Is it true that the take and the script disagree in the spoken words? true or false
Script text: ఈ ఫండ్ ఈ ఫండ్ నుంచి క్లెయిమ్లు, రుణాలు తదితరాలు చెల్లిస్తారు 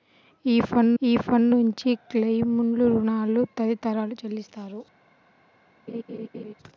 false